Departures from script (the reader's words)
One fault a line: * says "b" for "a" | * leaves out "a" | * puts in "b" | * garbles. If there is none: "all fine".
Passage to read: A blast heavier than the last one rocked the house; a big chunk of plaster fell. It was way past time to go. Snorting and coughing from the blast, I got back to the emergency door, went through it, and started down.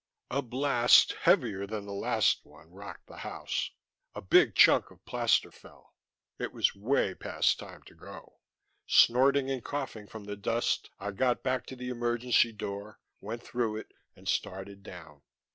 * says "dust" for "blast"